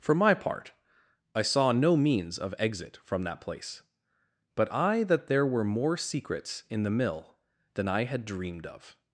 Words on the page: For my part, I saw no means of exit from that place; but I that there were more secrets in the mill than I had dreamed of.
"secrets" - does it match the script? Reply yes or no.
yes